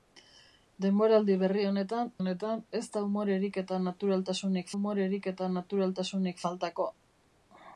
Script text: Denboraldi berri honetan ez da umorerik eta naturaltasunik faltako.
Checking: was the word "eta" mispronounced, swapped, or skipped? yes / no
no